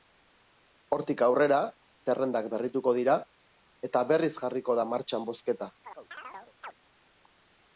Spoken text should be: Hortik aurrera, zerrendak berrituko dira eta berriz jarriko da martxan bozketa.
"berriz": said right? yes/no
yes